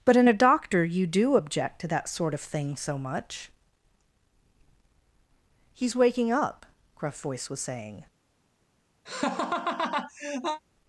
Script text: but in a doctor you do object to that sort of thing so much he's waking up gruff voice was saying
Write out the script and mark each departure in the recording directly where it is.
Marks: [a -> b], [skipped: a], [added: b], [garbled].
but in a doctor you do object to that sort of thing so much he's waking up gruff voice was saying